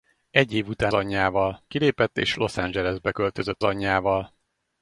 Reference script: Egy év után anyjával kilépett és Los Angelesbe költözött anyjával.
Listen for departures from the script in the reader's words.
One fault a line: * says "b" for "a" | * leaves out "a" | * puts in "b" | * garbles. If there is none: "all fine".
all fine